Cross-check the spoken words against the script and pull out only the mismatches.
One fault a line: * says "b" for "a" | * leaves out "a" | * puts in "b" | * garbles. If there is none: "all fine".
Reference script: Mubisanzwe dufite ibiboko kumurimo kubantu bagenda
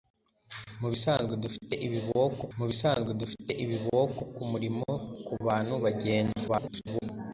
* puts in "mubisanzwe dufite ibiboko"
* garbles